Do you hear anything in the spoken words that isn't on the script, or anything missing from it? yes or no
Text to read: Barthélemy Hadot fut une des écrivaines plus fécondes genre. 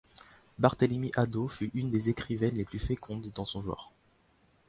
yes